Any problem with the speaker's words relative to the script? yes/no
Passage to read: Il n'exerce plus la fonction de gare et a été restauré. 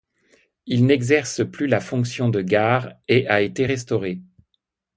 no